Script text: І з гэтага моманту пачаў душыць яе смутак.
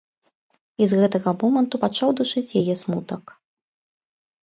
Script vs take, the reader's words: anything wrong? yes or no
no